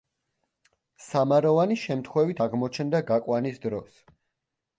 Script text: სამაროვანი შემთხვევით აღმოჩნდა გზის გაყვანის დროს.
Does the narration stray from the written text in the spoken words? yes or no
yes